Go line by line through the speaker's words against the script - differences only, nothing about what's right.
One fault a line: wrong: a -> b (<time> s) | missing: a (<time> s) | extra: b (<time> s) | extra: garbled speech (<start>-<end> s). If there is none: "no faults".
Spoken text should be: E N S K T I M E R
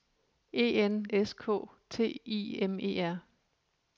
no faults